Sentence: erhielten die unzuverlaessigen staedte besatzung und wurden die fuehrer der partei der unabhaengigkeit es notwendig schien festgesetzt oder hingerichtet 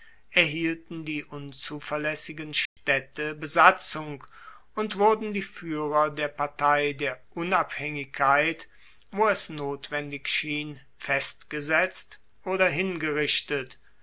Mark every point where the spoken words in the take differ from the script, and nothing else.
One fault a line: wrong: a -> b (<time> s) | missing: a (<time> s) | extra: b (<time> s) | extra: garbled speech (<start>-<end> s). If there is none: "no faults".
extra: wo (9.1 s)